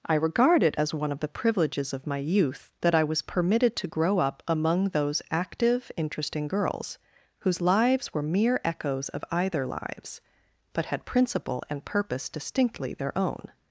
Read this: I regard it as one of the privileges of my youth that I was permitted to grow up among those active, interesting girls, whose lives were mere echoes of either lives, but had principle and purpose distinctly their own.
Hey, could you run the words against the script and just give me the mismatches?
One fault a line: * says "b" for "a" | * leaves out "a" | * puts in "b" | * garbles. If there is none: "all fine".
all fine